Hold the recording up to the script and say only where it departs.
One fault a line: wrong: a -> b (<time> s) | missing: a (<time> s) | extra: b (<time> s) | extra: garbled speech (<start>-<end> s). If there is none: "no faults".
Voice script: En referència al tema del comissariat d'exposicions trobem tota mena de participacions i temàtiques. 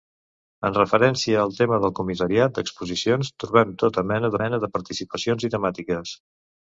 extra: mena (4.4 s)